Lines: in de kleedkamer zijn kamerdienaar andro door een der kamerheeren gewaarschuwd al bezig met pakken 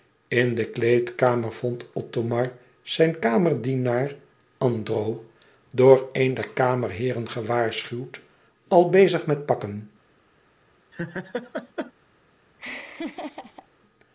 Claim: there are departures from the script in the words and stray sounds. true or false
true